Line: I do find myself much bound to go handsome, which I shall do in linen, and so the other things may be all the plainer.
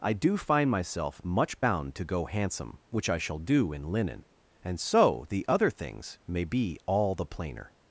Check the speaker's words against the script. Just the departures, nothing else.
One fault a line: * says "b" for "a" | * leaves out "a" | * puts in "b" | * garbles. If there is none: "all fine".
all fine